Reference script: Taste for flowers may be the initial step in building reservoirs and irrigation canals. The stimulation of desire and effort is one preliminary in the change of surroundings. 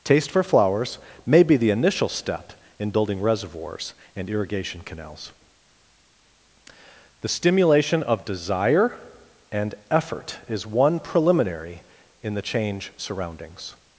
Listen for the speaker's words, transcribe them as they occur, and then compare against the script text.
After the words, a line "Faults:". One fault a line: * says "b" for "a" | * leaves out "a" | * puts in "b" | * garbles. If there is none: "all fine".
Taste for flowers may be the initial step in building reservoirs and irrigation canals. The stimulation of desire and effort is one preliminary in the change surroundings.
Faults:
* leaves out "of"